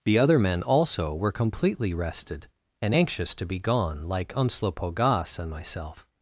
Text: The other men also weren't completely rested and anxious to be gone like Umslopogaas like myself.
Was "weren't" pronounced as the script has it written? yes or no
no